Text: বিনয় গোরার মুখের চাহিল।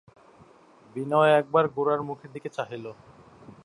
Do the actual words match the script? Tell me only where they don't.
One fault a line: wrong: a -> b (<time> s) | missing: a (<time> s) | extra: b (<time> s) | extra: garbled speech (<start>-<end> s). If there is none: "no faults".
extra: একবার (1.4 s)
extra: দিকে (2.3 s)